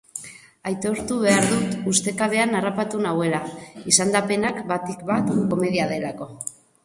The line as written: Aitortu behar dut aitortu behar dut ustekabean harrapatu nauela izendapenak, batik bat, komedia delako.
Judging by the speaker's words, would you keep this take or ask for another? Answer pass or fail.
fail